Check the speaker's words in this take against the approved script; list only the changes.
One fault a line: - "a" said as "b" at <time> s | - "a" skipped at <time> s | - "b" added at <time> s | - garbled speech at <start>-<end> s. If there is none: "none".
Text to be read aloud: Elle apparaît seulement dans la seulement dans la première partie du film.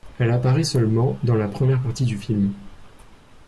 - "seulement dans la" skipped at 1.5 s